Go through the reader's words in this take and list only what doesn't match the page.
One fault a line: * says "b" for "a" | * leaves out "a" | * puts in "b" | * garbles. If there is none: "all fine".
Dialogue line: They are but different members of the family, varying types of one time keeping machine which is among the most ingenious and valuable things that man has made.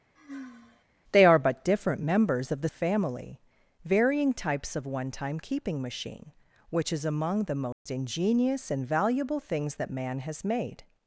all fine